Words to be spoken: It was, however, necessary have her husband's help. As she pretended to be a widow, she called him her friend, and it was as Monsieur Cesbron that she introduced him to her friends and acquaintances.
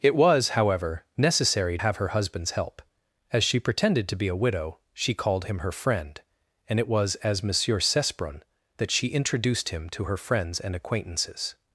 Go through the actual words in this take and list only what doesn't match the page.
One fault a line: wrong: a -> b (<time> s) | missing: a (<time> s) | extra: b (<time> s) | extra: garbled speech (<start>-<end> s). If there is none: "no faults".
no faults